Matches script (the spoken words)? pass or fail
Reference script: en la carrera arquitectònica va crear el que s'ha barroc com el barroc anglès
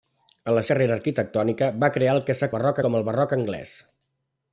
pass